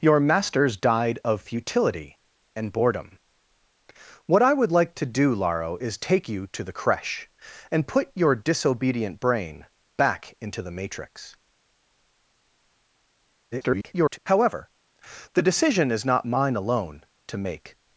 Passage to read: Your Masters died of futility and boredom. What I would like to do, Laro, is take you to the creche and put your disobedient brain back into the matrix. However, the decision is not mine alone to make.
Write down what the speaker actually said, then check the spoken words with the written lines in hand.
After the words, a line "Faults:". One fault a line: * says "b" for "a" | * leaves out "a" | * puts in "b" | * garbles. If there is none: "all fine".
Your Masters died of futility and boredom. What I would like to do, Laro, is take you to the creche and put your disobedient brain back into the matrix. [garbled] However, the decision is not mine alone to make.
Faults:
* garbles